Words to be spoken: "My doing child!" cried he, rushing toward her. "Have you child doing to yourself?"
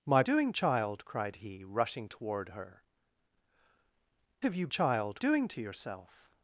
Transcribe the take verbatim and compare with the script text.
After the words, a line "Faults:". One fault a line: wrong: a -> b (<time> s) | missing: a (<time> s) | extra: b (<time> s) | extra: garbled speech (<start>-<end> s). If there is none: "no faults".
"My doing child!" cried he, rushing toward her. "Have you child doing to yourself?"
Faults:
no faults